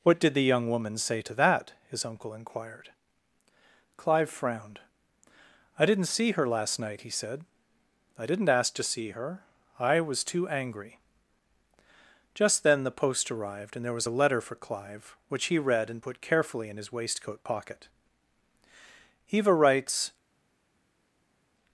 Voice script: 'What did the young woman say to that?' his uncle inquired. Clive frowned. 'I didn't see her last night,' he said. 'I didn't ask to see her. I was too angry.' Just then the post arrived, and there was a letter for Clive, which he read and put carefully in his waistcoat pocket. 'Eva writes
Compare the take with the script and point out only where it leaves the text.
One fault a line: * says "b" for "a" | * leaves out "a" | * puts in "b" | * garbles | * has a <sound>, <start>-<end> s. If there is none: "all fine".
all fine